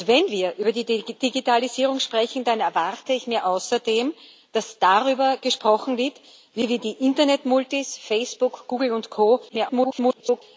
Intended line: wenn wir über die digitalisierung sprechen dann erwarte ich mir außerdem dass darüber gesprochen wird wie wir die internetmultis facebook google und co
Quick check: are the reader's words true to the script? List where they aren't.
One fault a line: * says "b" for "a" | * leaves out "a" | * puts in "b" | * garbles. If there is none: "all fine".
* garbles